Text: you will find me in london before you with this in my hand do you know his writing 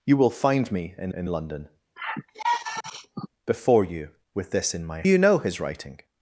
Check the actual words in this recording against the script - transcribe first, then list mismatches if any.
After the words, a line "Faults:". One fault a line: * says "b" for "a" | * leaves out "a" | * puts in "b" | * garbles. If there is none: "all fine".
you will find me in in london before you with this in my you know his writing
Faults:
* puts in "in"
* leaves out "hand do"